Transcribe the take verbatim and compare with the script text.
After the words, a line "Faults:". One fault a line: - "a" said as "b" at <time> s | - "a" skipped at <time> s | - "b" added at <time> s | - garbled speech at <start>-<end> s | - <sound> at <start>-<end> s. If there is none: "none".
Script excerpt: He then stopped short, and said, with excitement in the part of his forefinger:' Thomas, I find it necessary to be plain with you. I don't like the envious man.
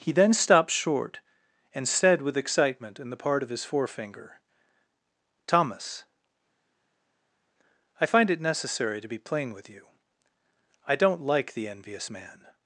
He then stopped short, and said, with excitement in the part of his forefinger:' Thomas, I find it necessary to be plain with you. I don't like the envious man.
Faults:
none